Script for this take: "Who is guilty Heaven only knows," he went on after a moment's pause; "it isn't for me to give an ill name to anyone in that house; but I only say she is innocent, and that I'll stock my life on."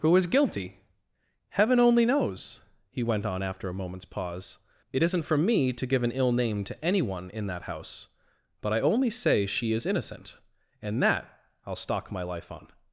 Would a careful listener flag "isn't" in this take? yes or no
no